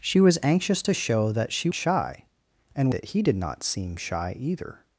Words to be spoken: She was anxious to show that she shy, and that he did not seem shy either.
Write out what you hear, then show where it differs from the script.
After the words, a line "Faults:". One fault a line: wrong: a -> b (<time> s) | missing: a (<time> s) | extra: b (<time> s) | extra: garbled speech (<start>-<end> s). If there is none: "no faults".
She was anxious to show that she shy, and that he did not seem shy either.
Faults:
no faults